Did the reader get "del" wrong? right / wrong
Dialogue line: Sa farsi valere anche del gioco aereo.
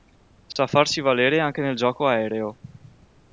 wrong